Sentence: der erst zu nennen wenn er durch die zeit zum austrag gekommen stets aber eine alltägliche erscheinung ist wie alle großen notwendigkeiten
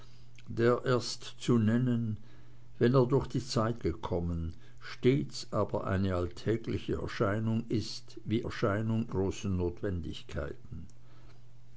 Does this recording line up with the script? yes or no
no